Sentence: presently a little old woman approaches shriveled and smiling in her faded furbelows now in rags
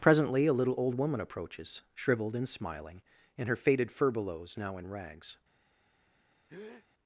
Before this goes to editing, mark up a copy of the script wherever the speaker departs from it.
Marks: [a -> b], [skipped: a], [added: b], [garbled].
presently a little old woman approaches shriveled and smiling in her faded furbelows now in rags